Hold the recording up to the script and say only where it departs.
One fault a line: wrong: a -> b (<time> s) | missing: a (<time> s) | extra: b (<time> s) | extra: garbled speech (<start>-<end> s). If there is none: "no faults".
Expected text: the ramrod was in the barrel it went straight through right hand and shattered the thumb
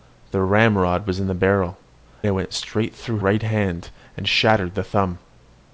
no faults